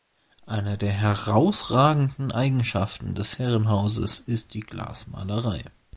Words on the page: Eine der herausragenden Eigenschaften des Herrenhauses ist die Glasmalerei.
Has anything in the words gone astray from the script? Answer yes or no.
no